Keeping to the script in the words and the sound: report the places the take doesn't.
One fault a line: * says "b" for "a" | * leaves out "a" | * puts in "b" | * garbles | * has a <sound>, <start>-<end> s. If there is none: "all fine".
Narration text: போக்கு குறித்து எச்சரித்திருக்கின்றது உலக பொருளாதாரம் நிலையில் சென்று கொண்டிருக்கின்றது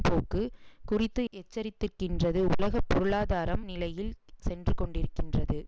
all fine